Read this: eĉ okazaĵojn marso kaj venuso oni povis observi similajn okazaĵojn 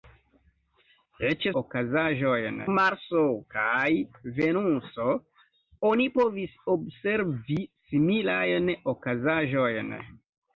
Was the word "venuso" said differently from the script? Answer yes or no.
no